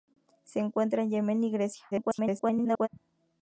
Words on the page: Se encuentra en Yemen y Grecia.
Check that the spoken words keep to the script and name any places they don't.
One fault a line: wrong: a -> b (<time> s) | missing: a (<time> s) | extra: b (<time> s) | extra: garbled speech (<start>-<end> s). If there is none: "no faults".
extra: garbled speech (1.9-2.9 s)